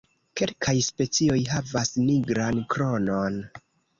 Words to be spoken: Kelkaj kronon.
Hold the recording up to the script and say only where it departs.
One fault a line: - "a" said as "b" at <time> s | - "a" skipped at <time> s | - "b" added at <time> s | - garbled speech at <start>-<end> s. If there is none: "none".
- "specioj havas nigran" added at 0.8 s